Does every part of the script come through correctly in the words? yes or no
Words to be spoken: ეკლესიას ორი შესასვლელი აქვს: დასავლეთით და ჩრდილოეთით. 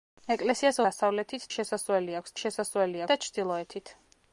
no